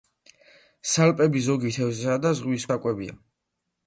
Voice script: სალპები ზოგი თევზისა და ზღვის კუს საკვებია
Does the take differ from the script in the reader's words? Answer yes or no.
yes